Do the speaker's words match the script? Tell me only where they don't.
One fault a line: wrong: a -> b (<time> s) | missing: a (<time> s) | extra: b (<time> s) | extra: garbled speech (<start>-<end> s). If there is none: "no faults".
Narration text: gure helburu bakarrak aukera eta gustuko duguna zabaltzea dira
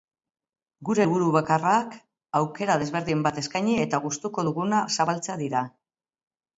extra: desberdin bat eskaini (2.8 s)